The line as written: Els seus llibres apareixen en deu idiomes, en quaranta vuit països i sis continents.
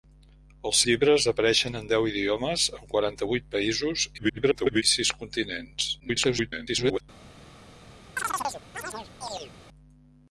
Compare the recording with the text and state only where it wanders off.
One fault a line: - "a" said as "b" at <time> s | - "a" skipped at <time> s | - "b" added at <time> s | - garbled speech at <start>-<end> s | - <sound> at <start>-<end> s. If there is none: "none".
- "seus" skipped at 0.8 s
- garbled speech at 4.2-4.8 s
- garbled speech at 6.0-7.0 s
- chirp at 8.2-9.5 s